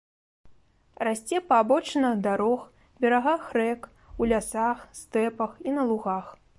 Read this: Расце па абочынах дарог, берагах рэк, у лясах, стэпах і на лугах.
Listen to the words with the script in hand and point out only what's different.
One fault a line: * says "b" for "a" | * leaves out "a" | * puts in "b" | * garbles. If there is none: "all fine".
all fine